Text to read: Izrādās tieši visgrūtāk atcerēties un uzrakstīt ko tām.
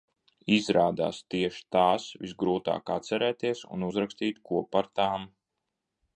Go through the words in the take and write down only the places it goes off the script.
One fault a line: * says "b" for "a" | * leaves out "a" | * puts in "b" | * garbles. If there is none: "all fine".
* puts in "tās"
* puts in "par"